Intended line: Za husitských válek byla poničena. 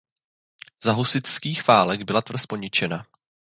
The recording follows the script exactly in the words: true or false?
false